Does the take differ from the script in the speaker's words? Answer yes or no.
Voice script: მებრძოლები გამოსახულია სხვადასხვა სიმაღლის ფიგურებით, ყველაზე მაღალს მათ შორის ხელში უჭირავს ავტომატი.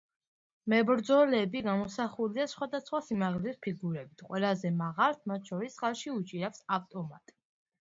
no